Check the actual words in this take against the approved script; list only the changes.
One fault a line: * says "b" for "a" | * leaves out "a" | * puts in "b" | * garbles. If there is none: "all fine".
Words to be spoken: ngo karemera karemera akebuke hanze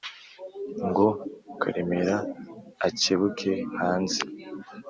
* leaves out "karemera"